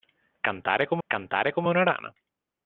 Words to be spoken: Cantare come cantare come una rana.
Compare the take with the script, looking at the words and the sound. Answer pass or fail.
pass